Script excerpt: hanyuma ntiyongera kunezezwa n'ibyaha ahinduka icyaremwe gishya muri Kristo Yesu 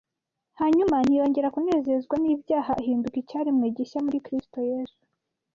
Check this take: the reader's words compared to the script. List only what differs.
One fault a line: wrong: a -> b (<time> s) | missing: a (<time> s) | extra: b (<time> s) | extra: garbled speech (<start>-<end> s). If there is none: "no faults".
no faults